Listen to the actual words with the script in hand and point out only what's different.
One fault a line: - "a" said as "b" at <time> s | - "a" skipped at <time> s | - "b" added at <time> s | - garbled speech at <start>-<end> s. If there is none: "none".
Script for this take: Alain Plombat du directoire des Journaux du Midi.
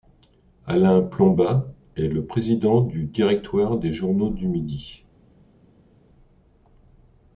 - "est le président" added at 1.9 s